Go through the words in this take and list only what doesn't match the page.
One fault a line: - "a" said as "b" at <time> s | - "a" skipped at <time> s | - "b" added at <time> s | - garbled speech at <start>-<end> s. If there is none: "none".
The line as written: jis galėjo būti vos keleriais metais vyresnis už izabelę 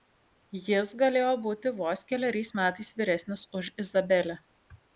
none